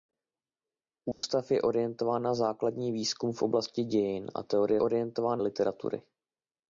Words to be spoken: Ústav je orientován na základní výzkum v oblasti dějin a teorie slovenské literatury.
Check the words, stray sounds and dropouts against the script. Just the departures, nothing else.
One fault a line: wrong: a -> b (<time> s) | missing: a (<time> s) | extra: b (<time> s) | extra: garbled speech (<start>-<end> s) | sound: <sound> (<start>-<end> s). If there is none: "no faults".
sound: dropout (1.1-1.2 s)
wrong: slovenské -> orientován (4.8 s)